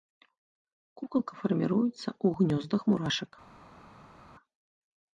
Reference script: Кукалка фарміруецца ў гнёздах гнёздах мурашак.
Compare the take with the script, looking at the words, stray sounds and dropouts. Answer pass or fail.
fail